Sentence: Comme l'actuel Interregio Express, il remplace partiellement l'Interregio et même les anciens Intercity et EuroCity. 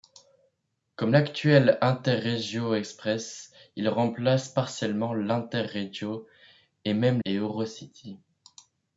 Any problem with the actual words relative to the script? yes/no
yes